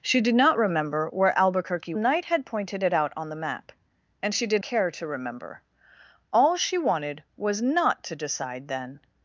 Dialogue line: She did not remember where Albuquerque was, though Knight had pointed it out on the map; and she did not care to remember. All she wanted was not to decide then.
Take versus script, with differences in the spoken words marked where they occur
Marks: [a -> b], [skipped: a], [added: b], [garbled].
She did not remember where Albuquerque [skipped: was, though] Knight had pointed it out on the map; and she did [skipped: not] care to remember. All she wanted was not to decide then.